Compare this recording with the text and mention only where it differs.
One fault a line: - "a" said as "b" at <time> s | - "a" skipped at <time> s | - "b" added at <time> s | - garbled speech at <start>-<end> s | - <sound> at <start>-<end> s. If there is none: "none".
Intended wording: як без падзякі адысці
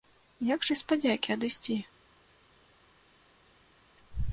none